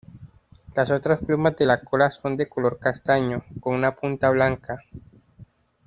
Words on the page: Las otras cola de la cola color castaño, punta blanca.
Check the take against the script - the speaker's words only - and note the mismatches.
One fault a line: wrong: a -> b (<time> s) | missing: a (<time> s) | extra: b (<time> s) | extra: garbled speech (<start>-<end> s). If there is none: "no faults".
wrong: cola -> plumas (1.2 s)
extra: son de (2.1 s)
extra: con una (3.6 s)